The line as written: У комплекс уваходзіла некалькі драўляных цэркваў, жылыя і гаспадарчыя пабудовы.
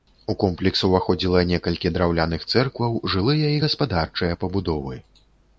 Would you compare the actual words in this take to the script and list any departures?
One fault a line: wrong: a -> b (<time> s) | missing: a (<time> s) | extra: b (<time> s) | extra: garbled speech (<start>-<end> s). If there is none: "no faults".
no faults